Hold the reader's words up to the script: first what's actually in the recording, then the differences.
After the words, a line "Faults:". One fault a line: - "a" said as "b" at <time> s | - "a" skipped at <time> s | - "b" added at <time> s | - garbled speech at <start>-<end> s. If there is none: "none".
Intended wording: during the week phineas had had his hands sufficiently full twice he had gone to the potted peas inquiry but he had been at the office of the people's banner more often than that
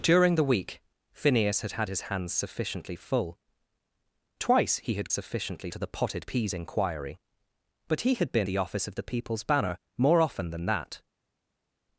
during the week phineas had had his hands sufficiently full twice he had sufficiently to the potted peas inquiry but he had been the office of the people's banner more often than that
Faults:
- "gone" said as "sufficiently" at 5.1 s
- "at" skipped at 8.5 s